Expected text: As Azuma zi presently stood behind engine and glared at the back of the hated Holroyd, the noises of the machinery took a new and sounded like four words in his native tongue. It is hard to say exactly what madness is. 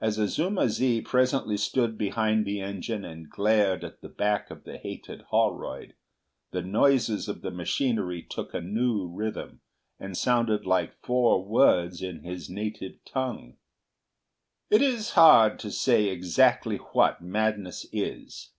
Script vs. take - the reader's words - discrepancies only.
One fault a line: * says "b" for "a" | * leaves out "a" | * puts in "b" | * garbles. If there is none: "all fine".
* puts in "the"
* puts in "rhythm"